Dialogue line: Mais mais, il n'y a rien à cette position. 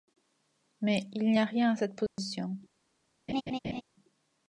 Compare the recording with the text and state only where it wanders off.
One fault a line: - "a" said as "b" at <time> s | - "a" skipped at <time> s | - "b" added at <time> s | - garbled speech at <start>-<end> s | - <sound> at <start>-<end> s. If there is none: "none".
- "mais" skipped at 1.1 s
- dropout at 2.1-2.2 s
- laugh at 3.3-3.8 s